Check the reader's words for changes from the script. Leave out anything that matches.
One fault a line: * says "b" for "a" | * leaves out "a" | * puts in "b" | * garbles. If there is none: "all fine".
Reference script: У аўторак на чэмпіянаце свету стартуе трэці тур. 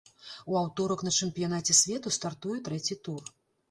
all fine